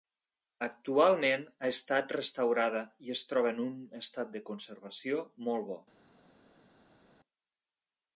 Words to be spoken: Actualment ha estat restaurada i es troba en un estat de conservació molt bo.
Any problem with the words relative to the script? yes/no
no